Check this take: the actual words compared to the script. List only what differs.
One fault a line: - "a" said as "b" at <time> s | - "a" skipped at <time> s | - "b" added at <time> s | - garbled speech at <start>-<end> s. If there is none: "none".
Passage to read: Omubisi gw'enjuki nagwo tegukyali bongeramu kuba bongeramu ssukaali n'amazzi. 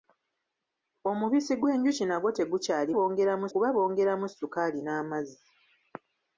none